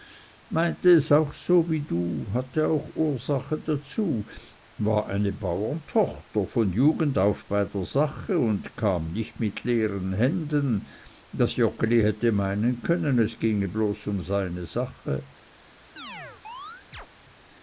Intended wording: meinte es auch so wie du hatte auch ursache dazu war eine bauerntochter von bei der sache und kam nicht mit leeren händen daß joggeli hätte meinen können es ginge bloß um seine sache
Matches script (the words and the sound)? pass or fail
fail